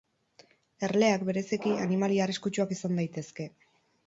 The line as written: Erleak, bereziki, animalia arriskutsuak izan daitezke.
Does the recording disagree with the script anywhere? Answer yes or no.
no